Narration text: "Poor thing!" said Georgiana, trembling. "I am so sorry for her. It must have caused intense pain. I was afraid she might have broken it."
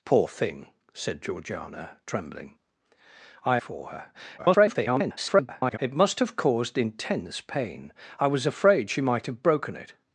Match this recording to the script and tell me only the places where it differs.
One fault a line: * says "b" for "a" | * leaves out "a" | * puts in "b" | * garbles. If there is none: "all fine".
* leaves out "am so sorry"
* garbles